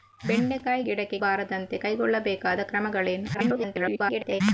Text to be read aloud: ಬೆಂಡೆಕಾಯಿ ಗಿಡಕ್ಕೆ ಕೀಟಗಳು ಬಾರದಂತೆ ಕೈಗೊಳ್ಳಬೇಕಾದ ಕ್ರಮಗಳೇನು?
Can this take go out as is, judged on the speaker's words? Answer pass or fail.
fail